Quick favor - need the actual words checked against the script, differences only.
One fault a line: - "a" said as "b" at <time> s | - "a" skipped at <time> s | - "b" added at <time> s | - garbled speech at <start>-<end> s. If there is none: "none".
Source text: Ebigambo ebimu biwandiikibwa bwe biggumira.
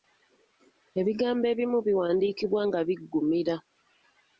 - "bwe" said as "nga" at 2.7 s